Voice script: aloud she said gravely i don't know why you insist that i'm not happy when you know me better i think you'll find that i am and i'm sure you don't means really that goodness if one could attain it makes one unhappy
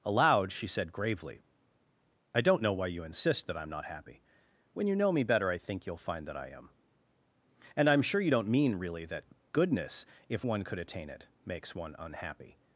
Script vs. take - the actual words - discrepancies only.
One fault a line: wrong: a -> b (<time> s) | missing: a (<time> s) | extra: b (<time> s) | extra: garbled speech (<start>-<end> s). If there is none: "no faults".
wrong: means -> mean (8.5 s)